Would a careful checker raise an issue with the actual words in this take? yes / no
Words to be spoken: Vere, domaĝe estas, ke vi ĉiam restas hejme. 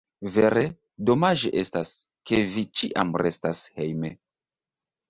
no